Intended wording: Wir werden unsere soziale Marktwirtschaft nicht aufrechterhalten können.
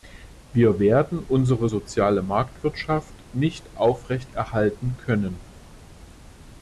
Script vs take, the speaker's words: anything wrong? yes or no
no